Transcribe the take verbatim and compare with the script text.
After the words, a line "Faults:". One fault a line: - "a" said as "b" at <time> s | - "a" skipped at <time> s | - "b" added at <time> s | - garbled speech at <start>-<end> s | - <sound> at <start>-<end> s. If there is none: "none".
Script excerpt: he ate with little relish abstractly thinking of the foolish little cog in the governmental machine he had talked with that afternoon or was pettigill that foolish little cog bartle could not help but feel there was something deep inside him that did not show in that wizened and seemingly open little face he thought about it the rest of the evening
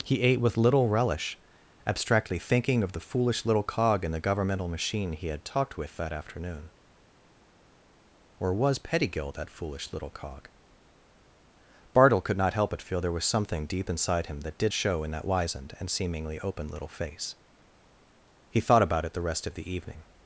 he ate with little relish abstractly thinking of the foolish little cog in the governmental machine he had talked with that afternoon or was pettigill that foolish little cog bartle could not help but feel there was something deep inside him that did show in that wizened and seemingly open little face he thought about it the rest of the evening
Faults:
- "not" skipped at 14.7 s